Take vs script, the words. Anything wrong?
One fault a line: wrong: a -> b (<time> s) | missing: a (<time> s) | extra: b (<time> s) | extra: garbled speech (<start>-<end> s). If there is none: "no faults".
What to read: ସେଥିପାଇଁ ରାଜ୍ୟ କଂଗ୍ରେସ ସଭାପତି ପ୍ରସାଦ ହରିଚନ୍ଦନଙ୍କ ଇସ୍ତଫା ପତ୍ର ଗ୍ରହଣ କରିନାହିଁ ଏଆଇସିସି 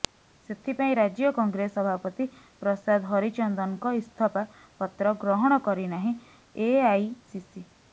no faults